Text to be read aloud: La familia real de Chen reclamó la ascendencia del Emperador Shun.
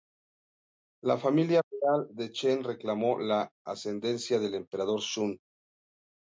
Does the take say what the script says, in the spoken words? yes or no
yes